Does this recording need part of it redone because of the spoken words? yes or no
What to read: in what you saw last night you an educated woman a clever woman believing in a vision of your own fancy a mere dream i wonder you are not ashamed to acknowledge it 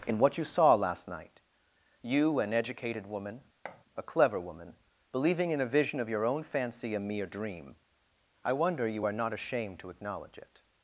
no